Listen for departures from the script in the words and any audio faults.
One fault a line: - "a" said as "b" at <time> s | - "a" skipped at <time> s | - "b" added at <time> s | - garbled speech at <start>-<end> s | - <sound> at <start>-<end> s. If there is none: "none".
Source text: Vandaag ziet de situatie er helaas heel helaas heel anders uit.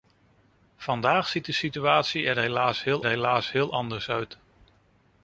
none